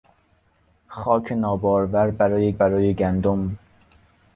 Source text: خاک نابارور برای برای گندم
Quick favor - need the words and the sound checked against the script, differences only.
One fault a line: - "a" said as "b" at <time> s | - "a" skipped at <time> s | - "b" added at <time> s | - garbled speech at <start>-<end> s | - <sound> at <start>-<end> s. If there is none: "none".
none